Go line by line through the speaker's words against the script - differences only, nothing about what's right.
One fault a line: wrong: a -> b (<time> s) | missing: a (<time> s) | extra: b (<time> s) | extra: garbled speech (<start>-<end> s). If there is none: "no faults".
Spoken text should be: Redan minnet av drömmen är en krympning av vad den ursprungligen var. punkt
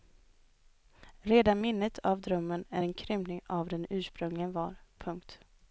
no faults